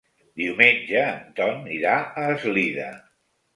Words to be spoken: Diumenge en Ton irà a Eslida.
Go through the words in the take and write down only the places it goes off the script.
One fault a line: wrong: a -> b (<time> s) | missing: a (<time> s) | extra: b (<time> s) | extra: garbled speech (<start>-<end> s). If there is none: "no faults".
no faults